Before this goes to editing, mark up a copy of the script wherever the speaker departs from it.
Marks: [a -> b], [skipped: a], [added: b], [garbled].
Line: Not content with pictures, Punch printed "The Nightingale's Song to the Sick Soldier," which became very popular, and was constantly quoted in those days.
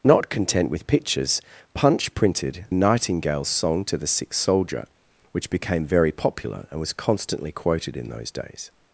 Not content with pictures, Punch printed [skipped: "The] Nightingale's Song to the Sick Soldier," which became very popular, and was constantly quoted in those days.